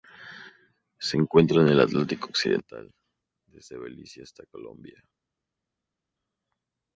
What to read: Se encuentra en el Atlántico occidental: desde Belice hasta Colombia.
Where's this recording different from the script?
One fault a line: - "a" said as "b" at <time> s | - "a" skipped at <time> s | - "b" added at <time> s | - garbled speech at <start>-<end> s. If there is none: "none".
none